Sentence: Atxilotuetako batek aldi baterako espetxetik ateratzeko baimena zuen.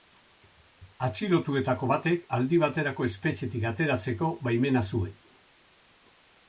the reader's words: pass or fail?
pass